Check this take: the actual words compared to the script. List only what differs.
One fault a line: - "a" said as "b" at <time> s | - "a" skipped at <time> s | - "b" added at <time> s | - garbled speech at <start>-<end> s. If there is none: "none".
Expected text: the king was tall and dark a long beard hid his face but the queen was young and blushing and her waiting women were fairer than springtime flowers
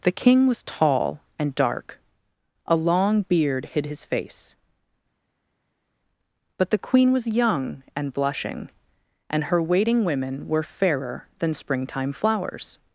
none